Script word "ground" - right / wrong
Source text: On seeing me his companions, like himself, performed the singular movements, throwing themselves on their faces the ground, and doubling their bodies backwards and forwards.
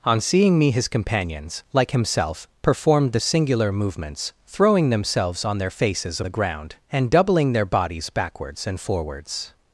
right